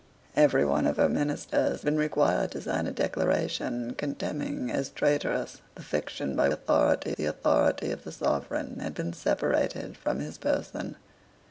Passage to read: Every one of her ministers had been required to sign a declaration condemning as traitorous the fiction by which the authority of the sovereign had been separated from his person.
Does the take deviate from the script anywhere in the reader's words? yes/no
yes